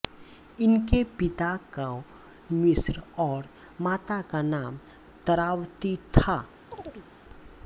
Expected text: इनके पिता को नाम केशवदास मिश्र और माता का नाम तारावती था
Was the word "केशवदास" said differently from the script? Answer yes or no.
yes